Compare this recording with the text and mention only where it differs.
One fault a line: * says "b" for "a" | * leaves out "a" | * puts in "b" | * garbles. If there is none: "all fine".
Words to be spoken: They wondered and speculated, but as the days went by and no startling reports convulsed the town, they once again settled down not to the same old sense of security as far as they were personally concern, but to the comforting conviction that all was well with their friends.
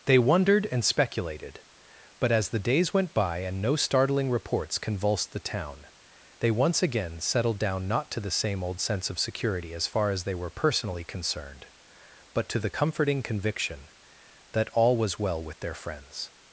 * says "concerned" for "concern"